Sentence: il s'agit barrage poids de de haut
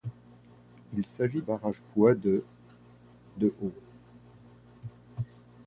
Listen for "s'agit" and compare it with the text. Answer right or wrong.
right